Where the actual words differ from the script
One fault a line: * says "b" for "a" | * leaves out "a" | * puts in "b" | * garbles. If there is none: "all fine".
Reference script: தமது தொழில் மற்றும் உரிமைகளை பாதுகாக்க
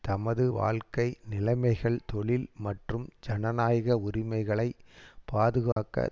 * puts in "வாழ்க்கை நிலைமைகள்"
* puts in "ஜனநாயக"